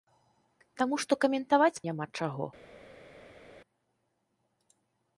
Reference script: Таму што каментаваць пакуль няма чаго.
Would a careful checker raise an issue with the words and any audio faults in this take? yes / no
yes